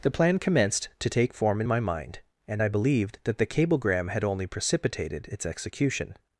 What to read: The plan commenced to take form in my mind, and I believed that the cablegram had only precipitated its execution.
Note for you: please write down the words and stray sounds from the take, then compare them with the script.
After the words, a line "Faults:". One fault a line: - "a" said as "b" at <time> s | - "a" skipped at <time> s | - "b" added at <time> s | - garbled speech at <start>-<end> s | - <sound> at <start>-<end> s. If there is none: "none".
The plan commenced to take form in my mind, and I believed that the cablegram had only precipitated its execution.
Faults:
none